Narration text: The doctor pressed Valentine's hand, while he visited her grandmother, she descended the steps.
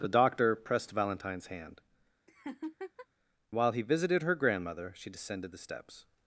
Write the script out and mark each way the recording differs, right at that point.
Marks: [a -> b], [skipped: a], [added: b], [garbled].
The doctor pressed Valentine's hand, while he visited her grandmother, she descended the steps.